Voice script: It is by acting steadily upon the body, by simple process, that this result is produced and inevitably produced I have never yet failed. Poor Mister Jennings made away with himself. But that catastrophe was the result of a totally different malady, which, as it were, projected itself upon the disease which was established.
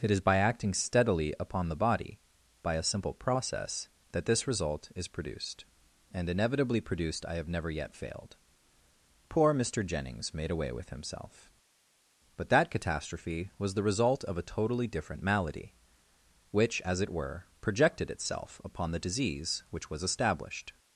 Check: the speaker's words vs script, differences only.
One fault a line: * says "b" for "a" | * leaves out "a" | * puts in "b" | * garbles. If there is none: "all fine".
* puts in "a"